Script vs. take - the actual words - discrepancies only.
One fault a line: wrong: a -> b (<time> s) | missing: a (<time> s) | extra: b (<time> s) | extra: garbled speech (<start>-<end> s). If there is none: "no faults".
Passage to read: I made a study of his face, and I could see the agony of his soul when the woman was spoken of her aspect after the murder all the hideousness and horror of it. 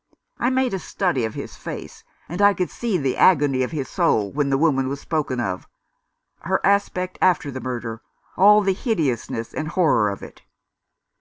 no faults